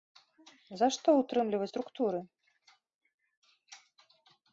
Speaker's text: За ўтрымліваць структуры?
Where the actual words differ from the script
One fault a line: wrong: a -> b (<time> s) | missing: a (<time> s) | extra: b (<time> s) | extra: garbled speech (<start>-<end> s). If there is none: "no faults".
extra: што (0.9 s)